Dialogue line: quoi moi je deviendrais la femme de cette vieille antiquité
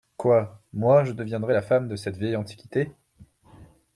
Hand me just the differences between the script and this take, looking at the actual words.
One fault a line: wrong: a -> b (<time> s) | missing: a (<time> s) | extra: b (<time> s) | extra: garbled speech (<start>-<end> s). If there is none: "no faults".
no faults